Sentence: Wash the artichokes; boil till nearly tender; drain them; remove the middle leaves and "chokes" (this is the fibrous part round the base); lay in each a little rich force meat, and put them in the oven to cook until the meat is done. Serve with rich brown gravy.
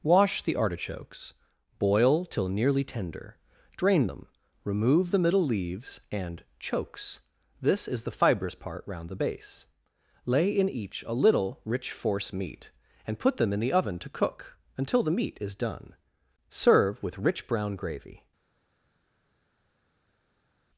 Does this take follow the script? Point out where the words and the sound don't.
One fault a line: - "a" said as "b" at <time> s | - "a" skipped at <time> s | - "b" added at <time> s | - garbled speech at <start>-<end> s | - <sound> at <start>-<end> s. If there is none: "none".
none